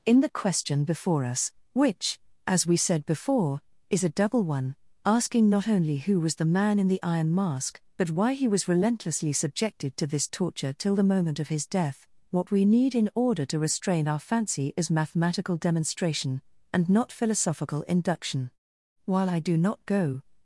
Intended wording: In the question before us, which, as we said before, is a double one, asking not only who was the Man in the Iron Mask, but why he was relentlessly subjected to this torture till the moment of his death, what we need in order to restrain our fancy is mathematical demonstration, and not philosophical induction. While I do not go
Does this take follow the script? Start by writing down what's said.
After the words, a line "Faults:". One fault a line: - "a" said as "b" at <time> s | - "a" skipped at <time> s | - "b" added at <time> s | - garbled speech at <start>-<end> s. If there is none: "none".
In the question before us, which, as we said before, is a double one, asking not only who was the Man in the Iron Mask, but why he was relentlessly subjected to this torture till the moment of his death, what we need in order to restrain our fancy is mathematical demonstration, and not philosophical induction. While I do not go
Faults:
none